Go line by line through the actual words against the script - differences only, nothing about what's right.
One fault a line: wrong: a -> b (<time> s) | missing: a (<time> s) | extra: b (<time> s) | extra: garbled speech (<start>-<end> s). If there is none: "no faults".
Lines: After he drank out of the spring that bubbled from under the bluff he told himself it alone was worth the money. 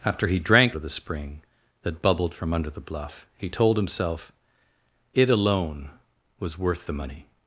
missing: out (0.8 s)